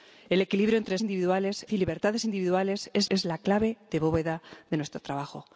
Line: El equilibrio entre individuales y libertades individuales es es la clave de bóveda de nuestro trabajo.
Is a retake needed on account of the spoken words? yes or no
no